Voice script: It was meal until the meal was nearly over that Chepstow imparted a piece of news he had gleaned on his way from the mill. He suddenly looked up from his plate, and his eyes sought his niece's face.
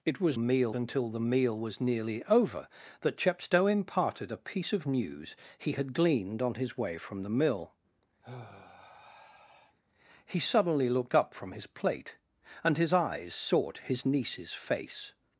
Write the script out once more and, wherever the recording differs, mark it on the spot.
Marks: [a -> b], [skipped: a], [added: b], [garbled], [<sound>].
It was meal until the meal was nearly over that Chepstow imparted a piece of news he had gleaned on his way from the mill. [sigh] He suddenly looked up from his plate, and his eyes sought his niece's face.